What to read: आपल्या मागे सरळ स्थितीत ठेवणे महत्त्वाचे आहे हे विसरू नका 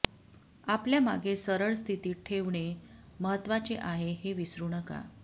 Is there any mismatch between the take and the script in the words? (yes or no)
no